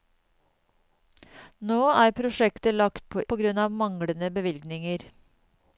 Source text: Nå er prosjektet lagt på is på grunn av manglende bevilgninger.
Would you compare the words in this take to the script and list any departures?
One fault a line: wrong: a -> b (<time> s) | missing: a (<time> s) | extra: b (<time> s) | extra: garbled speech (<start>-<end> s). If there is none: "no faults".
missing: is (3.2 s)